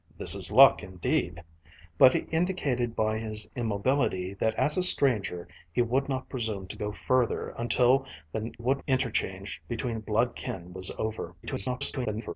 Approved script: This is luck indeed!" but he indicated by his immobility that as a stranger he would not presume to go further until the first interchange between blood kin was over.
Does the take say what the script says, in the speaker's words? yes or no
no